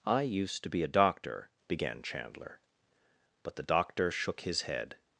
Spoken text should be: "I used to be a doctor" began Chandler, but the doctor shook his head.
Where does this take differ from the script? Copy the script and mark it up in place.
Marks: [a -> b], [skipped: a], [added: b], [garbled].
"I used to be a doctor" began Chandler, but the doctor shook his head.